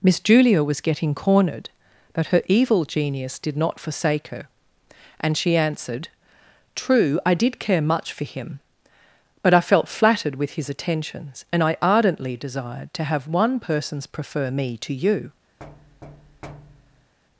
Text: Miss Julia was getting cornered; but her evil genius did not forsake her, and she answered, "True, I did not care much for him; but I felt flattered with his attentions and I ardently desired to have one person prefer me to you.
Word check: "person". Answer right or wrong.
wrong